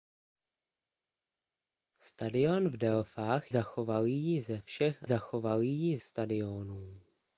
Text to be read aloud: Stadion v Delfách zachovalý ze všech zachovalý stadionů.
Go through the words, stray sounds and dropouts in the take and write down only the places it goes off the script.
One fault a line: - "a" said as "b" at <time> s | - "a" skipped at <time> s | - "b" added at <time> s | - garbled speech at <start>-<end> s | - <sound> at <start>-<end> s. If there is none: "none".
none